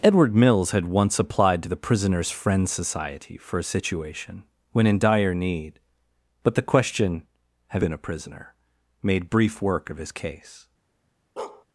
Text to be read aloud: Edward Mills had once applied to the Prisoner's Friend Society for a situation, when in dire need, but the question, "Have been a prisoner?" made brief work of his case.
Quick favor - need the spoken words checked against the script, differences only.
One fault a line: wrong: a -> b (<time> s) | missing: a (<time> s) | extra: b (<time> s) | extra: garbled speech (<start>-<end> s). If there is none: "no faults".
no faults